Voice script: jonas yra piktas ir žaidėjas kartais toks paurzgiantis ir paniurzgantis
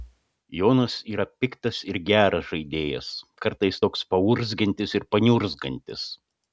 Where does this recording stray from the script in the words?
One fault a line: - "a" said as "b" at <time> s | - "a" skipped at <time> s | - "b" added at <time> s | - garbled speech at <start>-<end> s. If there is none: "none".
- "geras" added at 2.1 s